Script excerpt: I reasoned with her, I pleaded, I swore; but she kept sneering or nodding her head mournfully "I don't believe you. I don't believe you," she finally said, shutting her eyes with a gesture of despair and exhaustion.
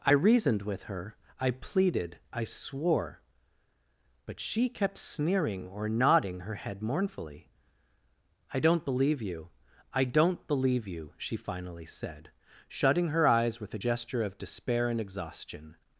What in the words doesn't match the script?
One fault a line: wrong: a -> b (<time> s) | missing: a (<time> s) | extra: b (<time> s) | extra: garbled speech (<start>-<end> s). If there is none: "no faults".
no faults